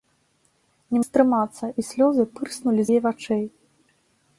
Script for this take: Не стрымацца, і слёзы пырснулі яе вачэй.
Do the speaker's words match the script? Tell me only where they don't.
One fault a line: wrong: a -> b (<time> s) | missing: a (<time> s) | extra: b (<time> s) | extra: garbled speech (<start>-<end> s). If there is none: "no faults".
no faults